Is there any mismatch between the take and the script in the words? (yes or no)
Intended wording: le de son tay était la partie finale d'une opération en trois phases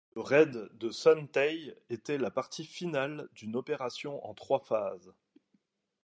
yes